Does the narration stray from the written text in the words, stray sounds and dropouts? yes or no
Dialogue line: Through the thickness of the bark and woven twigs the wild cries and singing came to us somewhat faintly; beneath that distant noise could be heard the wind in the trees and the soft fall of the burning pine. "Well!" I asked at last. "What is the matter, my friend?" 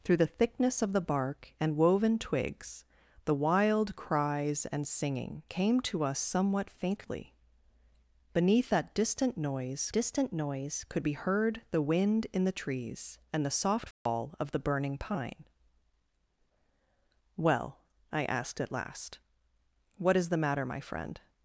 yes